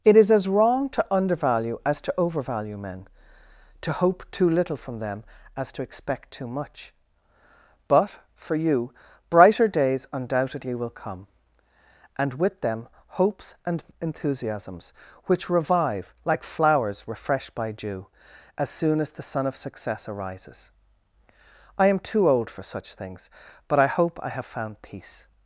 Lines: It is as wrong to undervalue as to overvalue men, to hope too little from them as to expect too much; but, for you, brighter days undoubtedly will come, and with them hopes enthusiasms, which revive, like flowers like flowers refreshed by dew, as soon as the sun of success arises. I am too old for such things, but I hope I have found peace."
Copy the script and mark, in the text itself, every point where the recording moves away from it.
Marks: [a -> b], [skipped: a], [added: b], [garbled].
It is as wrong to undervalue as to overvalue men, to hope too little from them as to expect too much; but, for you, brighter days undoubtedly will come, and with them hopes [added: and] enthusiasms, which revive, like flowers [skipped: like flowers] refreshed by dew, as soon as the sun of success arises. I am too old for such things, but I hope I have found peace."